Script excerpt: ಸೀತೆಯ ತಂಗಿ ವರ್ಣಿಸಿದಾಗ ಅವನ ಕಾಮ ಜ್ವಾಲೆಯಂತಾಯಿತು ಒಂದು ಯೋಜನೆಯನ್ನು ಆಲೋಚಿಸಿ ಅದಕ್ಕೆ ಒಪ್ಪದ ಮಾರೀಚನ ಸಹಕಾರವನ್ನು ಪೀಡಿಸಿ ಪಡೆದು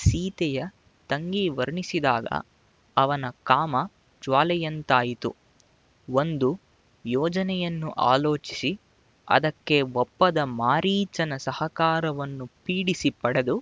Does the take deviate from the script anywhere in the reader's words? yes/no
no